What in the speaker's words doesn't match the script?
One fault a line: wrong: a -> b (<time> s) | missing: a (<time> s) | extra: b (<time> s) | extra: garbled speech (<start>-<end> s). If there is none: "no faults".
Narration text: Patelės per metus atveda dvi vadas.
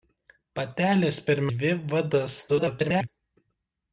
missing: metus atveda (1.4 s)
extra: garbled speech (2.5-3.1 s)